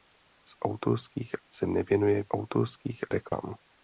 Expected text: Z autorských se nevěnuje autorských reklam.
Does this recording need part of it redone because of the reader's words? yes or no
no